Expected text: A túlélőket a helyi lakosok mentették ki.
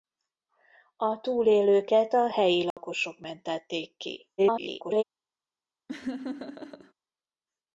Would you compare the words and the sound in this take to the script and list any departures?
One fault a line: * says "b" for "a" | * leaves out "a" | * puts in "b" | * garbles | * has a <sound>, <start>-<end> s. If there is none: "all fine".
* has a dropout, 2.7-2.8 s
* garbles
* has a laugh, 5.9-6.9 s